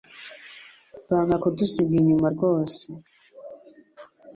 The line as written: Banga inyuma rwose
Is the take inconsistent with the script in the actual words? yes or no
yes